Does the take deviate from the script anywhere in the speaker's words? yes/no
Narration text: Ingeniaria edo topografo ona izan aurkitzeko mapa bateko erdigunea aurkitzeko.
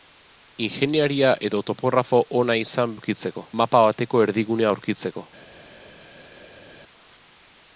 no